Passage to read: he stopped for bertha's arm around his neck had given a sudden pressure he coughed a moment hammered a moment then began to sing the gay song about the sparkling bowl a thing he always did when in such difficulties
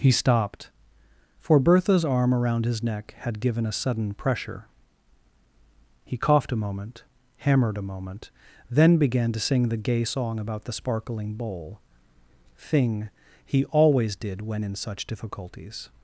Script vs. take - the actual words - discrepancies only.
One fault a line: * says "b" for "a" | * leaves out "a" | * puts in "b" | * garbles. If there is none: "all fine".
* leaves out "a"